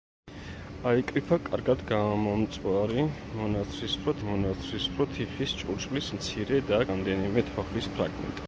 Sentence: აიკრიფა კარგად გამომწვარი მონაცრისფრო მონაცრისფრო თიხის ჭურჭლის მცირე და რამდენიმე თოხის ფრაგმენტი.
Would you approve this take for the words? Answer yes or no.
yes